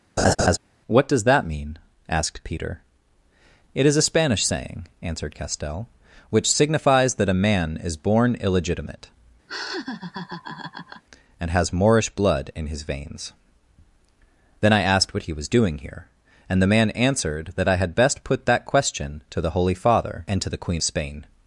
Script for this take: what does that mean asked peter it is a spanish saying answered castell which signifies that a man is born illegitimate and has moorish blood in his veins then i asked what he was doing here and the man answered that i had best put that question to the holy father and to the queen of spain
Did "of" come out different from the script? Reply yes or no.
yes